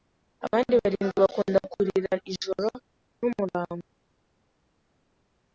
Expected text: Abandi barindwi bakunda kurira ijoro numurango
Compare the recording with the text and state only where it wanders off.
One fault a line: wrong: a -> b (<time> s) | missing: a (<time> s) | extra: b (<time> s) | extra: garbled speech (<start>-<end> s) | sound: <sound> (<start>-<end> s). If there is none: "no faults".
no faults